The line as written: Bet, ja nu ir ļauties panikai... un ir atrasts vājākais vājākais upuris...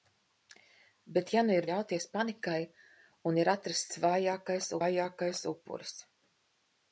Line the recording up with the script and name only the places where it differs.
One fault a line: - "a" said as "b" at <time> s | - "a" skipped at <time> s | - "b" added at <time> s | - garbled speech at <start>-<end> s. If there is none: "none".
none